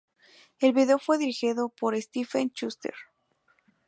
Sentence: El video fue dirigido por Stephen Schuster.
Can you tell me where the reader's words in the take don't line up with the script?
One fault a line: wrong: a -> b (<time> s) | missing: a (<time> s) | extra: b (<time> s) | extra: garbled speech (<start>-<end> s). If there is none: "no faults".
no faults